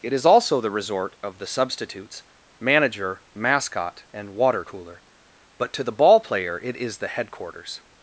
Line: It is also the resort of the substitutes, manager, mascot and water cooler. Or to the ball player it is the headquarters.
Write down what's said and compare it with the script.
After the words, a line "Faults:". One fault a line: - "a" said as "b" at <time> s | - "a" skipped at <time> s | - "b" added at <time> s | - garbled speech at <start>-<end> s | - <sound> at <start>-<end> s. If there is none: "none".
It is also the resort of the substitutes, manager, mascot and water cooler. But to the ball player it is the headquarters.
Faults:
- "Or" said as "But" at 5.6 s